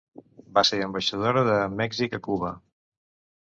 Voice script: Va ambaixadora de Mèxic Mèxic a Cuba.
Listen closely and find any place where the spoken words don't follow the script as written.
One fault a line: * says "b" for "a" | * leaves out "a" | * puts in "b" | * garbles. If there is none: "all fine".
* puts in "ser"
* leaves out "Mèxic"